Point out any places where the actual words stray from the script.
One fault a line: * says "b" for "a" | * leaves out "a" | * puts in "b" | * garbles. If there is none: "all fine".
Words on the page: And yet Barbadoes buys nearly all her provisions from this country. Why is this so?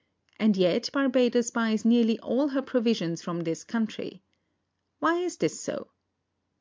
all fine